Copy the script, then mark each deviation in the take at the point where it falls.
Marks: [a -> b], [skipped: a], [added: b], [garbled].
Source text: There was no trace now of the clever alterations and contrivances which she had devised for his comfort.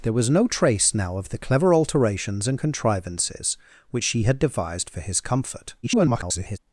There was no trace now of the clever alterations and contrivances which she had devised for his comfort. [garbled]